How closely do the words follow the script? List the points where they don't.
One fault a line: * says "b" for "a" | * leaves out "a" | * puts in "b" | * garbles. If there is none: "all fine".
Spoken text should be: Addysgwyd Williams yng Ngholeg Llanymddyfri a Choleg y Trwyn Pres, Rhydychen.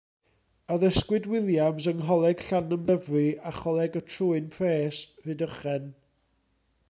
all fine